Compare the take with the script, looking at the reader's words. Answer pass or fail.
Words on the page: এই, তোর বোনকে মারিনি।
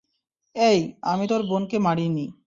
fail